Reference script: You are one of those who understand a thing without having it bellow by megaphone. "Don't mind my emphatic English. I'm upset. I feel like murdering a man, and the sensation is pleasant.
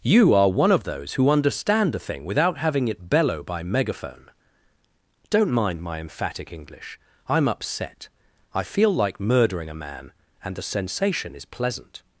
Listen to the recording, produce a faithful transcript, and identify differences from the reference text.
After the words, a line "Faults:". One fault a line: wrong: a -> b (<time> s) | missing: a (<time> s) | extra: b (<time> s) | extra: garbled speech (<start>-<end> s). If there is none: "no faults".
You are one of those who understand a thing without having it bellow by megaphone. "Don't mind my emphatic English. I'm upset. I feel like murdering a man, and the sensation is pleasant.
Faults:
no faults